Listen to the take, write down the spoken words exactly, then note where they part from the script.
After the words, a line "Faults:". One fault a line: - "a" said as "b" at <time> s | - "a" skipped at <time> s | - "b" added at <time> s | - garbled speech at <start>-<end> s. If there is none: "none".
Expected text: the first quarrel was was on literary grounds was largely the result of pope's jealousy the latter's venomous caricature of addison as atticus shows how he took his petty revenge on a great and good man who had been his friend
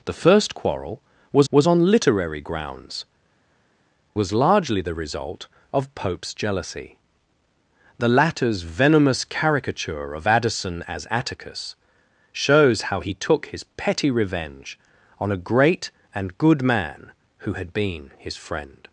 the first quarrel was was on literary grounds was largely the result of pope's jealousy the latter's venomous caricature of addison as atticus shows how he took his petty revenge on a great and good man who had been his friend
Faults:
none